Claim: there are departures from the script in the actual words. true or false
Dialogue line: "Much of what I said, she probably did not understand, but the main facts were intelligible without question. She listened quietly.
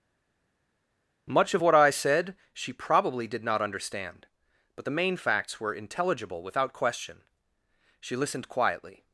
false